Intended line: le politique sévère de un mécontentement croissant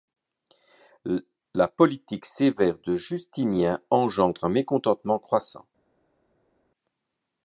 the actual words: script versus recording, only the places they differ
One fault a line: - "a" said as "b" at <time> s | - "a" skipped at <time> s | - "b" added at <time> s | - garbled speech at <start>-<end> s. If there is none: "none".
- "le" said as "la" at 1.5 s
- "justinien engendre" added at 2.9 s